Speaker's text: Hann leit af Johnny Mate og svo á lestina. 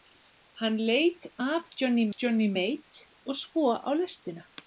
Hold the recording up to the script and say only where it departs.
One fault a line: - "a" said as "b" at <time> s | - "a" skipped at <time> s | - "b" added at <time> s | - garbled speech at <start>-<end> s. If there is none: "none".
- "Johnny" added at 2.2 s